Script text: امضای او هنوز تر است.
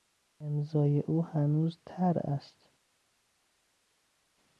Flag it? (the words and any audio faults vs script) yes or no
no